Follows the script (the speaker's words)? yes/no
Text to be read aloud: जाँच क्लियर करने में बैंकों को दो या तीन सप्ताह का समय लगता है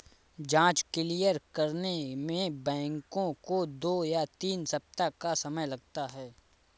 yes